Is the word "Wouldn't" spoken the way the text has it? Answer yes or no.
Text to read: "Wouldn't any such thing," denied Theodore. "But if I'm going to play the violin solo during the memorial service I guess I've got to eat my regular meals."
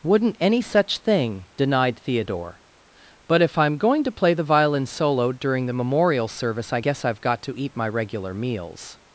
yes